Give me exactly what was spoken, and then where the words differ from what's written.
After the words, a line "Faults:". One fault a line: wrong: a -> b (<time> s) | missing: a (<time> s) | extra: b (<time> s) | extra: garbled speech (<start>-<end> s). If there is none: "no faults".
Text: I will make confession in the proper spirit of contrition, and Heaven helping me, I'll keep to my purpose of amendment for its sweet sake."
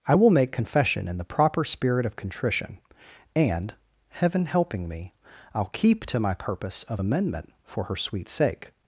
I will make confession in the proper spirit of contrition, and Heaven helping me, I'll keep to my purpose of amendment for her sweet sake."
Faults:
wrong: its -> her (7.8 s)